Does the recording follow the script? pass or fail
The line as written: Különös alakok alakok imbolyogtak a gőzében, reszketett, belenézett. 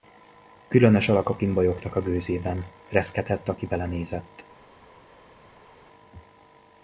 fail